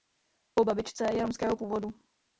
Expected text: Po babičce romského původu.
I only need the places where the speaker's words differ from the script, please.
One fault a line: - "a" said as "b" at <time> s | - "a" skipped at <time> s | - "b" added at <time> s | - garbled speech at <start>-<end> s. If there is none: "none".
- "je" added at 1.1 s